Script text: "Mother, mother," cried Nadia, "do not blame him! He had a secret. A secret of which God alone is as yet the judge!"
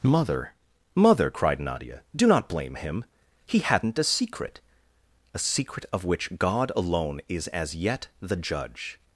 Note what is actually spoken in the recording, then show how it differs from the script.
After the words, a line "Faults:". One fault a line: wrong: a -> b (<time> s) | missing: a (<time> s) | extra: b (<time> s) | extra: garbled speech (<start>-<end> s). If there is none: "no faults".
"Mother, mother," cried Nadia, "do not blame him! He hadn't a secret. A secret of which God alone is as yet the judge!"
Faults:
wrong: had -> hadn't (3.6 s)